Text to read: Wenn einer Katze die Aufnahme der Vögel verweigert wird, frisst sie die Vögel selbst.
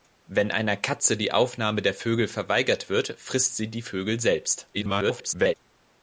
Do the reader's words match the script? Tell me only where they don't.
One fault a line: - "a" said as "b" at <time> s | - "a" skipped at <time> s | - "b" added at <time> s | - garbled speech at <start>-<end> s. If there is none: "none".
- garbled speech at 4.7-5.5 s